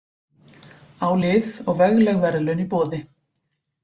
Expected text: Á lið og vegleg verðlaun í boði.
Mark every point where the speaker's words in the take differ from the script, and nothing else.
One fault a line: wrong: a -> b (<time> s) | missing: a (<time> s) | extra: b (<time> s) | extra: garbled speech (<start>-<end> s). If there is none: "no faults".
no faults